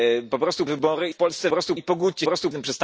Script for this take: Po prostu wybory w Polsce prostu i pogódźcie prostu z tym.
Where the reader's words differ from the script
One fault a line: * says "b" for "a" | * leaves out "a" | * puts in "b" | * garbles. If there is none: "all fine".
all fine